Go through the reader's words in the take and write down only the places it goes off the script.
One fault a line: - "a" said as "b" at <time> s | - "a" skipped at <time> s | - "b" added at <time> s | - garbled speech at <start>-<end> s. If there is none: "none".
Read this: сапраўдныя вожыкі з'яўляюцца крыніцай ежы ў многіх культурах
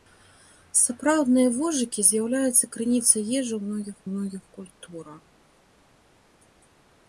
- "многіх" added at 4.1 s